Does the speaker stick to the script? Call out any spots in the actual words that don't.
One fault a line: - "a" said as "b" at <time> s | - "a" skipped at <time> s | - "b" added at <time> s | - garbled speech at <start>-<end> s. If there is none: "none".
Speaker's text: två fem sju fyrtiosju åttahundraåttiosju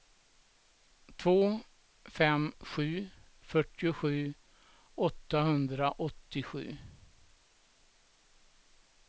none